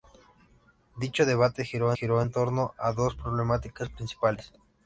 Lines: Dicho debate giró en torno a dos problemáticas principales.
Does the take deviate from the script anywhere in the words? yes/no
yes